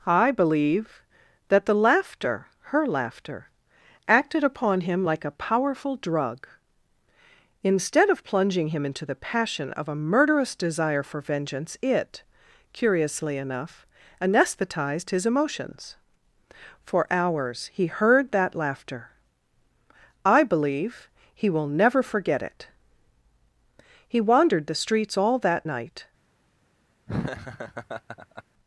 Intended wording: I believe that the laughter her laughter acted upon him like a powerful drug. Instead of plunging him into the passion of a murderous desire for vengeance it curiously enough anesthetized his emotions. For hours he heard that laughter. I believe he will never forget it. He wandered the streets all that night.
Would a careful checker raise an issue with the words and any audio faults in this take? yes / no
yes